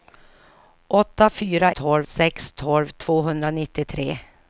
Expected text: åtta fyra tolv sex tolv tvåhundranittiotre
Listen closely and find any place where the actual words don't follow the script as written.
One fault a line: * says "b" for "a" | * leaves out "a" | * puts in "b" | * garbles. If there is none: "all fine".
all fine